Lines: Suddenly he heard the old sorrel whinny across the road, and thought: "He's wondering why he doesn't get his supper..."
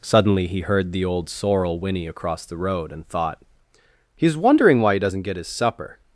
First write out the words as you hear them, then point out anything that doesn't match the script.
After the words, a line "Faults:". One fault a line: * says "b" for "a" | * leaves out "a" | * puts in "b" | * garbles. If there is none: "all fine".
Suddenly he heard the old sorrel whinny across the road, and thought: "He's wondering why he doesn't get his supper..."
Faults:
all fine